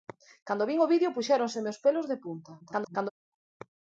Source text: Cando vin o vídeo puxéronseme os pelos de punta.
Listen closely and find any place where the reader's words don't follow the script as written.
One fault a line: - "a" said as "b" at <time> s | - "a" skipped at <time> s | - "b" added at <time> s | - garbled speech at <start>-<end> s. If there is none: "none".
- garbled speech at 2.6-3.1 s